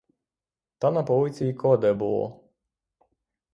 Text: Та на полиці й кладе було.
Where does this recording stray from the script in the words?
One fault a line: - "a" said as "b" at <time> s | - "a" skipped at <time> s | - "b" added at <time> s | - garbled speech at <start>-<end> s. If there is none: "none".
none